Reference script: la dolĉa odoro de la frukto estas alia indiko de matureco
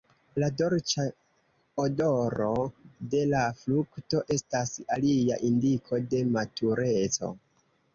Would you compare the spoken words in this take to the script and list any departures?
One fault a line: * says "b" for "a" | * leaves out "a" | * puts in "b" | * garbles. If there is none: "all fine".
all fine